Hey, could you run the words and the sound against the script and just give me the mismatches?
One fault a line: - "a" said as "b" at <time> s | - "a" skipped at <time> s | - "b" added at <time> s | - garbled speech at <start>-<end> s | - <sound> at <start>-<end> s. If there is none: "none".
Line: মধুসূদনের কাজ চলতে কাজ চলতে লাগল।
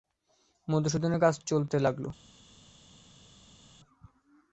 - "কাজ চলতে" skipped at 1.8 s